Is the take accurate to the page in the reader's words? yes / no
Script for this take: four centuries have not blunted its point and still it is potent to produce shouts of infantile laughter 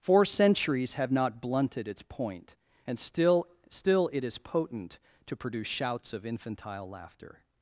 no